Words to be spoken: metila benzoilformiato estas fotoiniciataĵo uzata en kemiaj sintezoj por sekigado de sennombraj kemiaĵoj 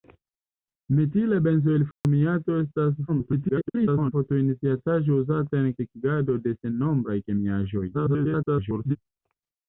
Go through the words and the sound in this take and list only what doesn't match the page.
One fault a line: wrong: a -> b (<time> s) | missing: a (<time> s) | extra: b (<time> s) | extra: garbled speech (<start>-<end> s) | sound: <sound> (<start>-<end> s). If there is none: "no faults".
sound: dropout (1.9-2.0 s)
extra: garbled speech (3.1-4.1 s)
missing: kemiaj sintezoj por (5.7 s)
extra: garbled speech (7.9-9.0 s)